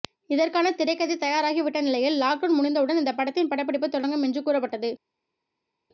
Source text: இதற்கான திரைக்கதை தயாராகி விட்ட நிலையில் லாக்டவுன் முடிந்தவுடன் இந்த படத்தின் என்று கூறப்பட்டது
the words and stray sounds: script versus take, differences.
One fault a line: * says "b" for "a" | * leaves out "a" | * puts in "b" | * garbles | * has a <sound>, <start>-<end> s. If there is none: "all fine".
* puts in "படப்பிடிப்பு தொடங்கும்"